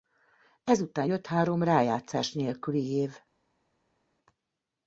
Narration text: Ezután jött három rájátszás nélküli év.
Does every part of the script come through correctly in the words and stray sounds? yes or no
yes